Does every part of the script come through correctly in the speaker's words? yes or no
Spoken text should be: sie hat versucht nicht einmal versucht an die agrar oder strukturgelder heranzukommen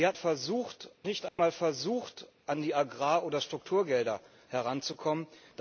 yes